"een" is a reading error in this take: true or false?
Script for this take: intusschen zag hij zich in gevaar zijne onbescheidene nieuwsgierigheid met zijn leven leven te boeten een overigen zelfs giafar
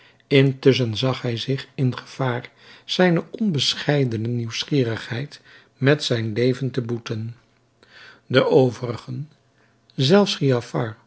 true